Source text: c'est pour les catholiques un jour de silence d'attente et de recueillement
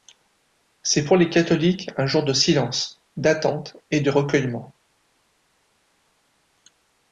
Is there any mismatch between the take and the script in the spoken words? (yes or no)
no